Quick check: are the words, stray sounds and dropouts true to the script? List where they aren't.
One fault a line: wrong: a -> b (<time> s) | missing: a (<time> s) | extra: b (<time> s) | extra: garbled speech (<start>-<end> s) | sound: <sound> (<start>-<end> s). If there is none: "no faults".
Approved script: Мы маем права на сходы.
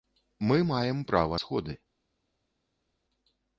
missing: на (1.4 s)